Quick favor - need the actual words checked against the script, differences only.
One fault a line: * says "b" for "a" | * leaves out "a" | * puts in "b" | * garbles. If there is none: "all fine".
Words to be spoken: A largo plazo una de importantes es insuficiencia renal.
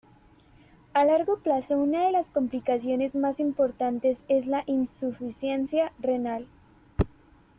* puts in "las complicaciones más"
* puts in "la"